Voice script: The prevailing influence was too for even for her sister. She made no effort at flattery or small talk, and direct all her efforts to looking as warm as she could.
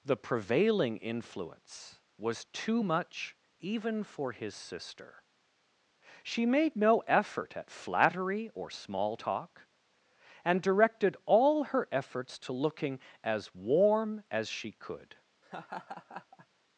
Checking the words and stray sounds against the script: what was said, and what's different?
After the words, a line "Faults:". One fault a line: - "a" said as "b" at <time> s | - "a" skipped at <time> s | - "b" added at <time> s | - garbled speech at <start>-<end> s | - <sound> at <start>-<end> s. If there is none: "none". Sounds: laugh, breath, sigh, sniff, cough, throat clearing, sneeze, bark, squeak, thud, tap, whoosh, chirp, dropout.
The prevailing influence was too much even for his sister. She made no effort at flattery or small talk, and directed all her efforts to looking as warm as she could.
Faults:
- "for" said as "much" at 2.8 s
- "her" said as "his" at 4.3 s
- "direct" said as "directed" at 10.6 s
- laugh at 15.4-16.5 s